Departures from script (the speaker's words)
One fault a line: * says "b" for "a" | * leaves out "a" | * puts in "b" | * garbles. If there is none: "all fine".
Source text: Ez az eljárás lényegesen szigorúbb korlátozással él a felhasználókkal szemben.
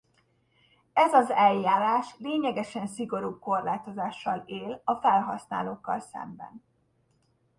all fine